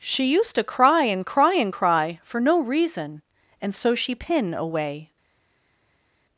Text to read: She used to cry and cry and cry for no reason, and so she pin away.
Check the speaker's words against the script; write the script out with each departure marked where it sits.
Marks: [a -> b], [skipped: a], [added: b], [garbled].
She used to cry and cry and cry for no reason, and so she pin away.